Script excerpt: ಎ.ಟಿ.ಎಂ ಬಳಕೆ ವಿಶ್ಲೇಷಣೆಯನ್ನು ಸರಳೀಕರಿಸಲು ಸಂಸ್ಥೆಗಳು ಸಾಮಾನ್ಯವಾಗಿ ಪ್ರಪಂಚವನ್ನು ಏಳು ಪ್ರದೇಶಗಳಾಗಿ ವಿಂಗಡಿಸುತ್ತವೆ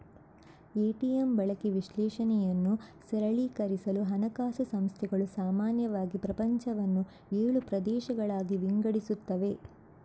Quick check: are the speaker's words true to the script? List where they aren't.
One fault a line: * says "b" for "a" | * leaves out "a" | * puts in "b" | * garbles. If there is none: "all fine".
* puts in "ಹಣಕಾಸು"